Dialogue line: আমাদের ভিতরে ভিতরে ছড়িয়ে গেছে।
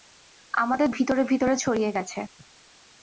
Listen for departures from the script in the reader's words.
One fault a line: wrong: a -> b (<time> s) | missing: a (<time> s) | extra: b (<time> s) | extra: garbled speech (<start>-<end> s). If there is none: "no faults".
no faults